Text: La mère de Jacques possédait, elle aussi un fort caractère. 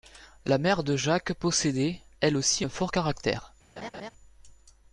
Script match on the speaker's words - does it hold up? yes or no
yes